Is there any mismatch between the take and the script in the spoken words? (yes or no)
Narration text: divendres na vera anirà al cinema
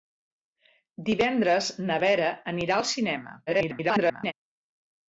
yes